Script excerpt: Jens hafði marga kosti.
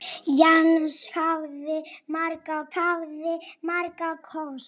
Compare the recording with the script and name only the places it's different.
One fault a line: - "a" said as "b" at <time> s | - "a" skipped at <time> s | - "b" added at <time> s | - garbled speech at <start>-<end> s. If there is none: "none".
- "hafði marga" added at 2.8 s